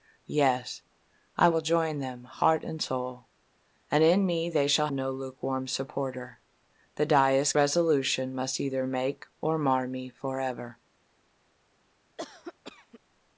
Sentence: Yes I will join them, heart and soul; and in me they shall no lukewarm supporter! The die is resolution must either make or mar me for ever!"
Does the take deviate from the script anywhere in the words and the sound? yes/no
yes